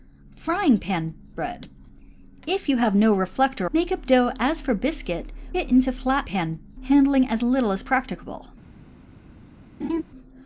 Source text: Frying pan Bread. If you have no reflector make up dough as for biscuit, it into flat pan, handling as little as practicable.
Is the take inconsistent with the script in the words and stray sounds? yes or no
yes